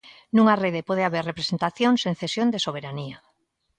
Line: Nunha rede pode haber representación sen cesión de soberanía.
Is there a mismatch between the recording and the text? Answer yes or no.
no